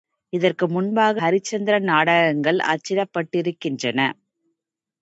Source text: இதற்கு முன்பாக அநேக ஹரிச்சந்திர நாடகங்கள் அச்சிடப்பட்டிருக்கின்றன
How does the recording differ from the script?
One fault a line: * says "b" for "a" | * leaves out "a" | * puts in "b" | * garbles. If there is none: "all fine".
* leaves out "அநேக"